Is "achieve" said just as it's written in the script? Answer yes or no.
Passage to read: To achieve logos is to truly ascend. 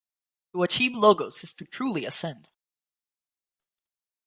yes